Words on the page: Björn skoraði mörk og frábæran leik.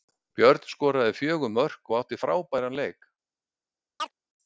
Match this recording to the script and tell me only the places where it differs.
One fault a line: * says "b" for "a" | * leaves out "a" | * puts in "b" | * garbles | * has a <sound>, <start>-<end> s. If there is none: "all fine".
* puts in "fjögur"
* puts in "átti"
* has a chirp, 4.0-4.1 s